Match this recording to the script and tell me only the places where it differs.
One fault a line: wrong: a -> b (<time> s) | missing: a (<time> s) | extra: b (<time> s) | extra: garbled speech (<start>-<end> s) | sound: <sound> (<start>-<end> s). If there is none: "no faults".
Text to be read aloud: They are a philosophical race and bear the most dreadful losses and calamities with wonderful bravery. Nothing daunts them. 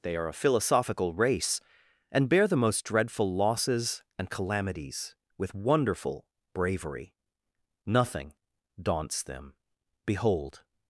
extra: Behold (10.1 s)